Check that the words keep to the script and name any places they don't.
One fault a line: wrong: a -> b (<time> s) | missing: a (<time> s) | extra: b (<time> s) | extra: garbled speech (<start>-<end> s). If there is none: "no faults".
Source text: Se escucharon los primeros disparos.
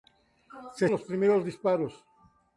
missing: escucharon (0.9 s)